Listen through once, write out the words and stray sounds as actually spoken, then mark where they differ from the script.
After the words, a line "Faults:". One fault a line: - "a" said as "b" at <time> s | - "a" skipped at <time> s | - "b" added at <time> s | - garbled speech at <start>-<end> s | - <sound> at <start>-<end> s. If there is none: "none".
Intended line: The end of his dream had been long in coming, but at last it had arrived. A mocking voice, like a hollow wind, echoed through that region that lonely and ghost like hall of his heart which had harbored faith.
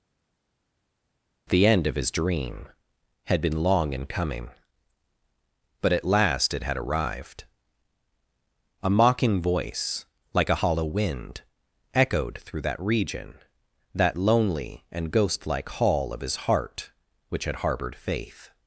The end of his dream had been long in coming, but at last it had arrived. A mocking voice, like a hollow wind, echoed through that region that lonely and ghost like hall of his heart which had harbored faith.
Faults:
none